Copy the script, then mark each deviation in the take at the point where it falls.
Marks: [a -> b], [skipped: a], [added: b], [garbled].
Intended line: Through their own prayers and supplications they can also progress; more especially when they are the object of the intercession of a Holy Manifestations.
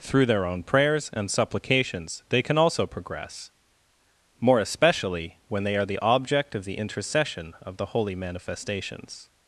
Through their own prayers and supplications they can also progress; more especially when they are the object of the intercession of [a -> the] Holy Manifestations.